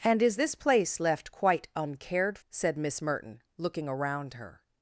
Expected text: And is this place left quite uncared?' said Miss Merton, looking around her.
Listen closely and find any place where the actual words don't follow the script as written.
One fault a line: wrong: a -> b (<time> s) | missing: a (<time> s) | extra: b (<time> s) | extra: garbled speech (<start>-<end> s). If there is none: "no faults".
no faults